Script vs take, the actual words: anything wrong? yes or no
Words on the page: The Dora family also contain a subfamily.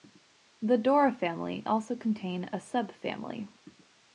no